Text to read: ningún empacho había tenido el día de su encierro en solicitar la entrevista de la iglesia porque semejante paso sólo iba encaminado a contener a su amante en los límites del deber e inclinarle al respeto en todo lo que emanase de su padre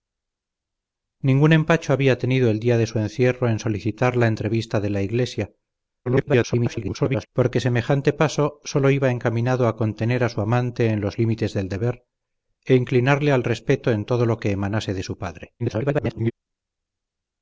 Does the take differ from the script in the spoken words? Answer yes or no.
yes